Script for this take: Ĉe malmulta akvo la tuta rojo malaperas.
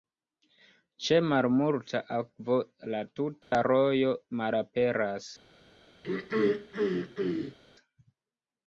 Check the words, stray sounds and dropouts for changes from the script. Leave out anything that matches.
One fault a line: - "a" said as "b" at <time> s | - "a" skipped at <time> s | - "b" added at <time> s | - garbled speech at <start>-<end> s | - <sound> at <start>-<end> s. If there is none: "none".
- dropout at 3.4-3.5 s
- throat clearing at 6.0-7.6 s